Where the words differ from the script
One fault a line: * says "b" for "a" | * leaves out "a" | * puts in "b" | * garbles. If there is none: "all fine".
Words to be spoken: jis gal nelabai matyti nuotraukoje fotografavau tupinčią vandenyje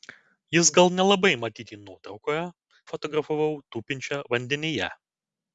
all fine